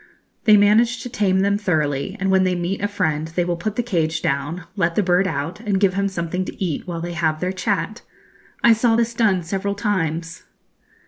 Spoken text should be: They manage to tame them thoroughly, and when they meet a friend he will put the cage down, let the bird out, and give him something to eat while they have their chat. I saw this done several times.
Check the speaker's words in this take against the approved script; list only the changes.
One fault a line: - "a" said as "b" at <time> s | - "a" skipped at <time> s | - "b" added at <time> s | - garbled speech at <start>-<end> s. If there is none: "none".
- "he" said as "they" at 3.3 s